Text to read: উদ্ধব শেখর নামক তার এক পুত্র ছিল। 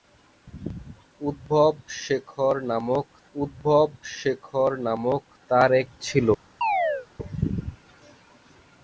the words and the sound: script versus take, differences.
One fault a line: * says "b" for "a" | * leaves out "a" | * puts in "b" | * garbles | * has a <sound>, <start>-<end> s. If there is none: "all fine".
* puts in "উদ্ধব শেখর নামক"
* leaves out "পুত্র"
* has a chirp, 6.6-7.1 s